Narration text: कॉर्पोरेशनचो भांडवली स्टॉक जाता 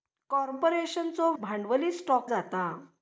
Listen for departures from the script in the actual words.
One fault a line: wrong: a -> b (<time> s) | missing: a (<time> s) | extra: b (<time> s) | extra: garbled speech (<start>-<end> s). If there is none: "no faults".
no faults